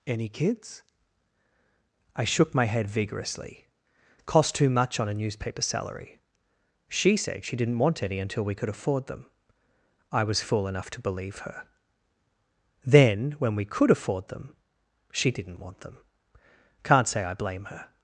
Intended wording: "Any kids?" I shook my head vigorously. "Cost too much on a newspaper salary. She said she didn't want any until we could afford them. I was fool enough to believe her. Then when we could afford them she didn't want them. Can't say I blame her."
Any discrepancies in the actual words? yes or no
no